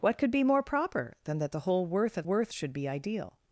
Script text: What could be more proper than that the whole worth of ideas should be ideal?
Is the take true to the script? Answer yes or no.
no